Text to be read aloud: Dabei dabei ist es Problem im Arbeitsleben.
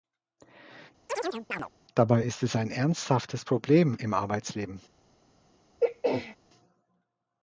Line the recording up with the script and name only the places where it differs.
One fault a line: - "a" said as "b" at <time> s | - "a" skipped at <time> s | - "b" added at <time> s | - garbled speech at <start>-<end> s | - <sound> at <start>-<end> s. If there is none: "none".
- chirp at 1.1-1.7 s
- "dabei" skipped at 2.2 s
- "ein ernsthaftes" added at 2.5 s
- throat clearing at 5.8-6.4 s